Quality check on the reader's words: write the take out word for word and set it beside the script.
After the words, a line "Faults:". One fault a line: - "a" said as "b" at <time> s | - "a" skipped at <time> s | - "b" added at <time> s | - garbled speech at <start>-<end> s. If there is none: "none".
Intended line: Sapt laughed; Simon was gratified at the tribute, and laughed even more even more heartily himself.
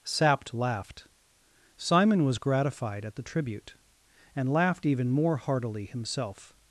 Sapt laughed; Simon was gratified at the tribute, and laughed even more heartily himself.
Faults:
- "even more" skipped at 5.4 s